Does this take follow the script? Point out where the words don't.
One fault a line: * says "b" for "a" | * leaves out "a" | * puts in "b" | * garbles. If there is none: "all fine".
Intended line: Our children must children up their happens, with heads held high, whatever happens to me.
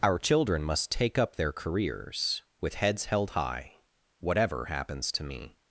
* says "take" for "children"
* says "careers" for "happens"